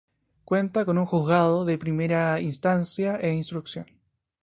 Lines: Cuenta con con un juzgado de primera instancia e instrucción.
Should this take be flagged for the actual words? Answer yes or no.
yes